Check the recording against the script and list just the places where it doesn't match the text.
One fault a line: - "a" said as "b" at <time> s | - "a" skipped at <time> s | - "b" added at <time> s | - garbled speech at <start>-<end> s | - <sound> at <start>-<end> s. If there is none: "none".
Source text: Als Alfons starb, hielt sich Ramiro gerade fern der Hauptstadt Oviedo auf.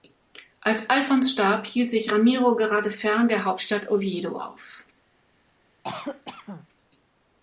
- cough at 5.8-6.7 s